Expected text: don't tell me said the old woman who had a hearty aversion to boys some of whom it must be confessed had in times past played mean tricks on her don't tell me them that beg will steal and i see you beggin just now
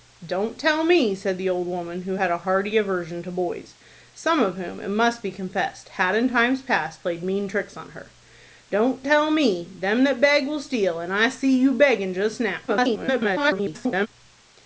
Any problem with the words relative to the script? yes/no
yes